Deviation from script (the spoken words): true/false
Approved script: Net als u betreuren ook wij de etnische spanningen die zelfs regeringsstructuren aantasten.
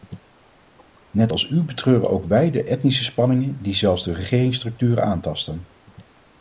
true